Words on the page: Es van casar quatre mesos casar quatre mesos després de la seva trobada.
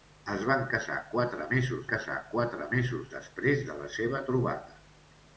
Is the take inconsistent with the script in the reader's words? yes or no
no